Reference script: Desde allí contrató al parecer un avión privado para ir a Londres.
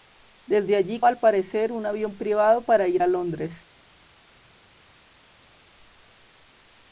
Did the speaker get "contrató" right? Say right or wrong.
wrong